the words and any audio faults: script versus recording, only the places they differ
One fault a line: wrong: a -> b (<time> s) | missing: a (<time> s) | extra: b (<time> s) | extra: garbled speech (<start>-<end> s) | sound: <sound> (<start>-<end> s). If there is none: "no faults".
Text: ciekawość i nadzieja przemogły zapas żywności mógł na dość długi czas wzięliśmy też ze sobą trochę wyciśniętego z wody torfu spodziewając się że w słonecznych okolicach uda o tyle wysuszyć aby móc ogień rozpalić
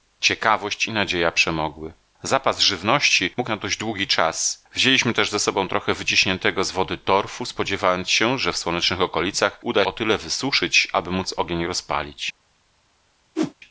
sound: whoosh (13.4-13.5 s)